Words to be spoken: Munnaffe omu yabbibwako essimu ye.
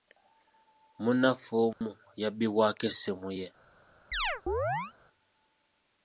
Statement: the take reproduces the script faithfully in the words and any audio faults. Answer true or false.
false